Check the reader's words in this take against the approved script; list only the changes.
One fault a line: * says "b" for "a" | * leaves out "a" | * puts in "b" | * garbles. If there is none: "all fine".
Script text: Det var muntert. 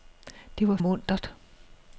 all fine